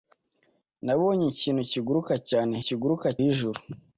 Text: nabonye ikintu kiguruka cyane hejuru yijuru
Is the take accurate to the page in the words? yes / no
no